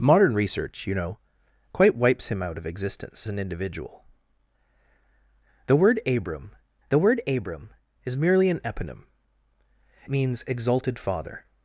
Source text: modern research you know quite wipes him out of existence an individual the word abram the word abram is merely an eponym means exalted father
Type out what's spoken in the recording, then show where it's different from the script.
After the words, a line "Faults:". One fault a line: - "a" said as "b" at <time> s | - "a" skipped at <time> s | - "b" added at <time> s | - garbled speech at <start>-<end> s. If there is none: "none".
modern research you know quite wipes him out of existence an individual the word abram the word abram is merely an eponym means exalted father
Faults:
none